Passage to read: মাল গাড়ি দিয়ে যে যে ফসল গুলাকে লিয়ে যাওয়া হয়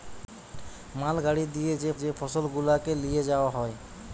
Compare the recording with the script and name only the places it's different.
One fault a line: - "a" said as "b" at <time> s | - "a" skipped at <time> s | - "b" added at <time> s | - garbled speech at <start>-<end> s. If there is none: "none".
none